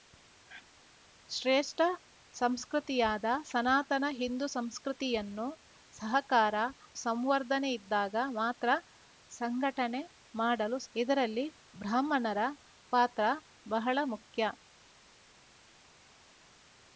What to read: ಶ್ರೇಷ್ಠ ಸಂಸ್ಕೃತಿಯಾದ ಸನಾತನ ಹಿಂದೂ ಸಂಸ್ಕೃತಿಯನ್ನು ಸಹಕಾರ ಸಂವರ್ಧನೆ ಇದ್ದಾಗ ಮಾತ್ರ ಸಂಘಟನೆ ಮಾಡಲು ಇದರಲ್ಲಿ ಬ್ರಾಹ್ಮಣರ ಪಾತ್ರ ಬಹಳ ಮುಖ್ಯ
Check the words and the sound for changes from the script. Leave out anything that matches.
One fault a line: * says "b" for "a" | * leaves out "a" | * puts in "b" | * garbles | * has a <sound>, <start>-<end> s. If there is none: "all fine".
all fine